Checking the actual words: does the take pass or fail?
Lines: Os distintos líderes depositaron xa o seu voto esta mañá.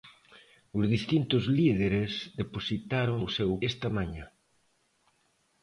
fail